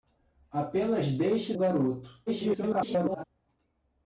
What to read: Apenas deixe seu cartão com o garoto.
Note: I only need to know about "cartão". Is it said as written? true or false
false